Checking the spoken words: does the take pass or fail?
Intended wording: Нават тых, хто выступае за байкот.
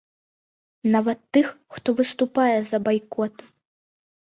pass